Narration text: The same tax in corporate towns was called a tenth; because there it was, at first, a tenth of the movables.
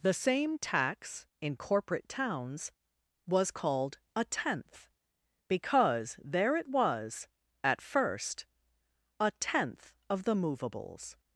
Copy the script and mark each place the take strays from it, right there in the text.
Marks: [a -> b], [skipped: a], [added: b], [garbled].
The same tax in corporate towns was called a tenth; because there it was, at first, a tenth of the movables.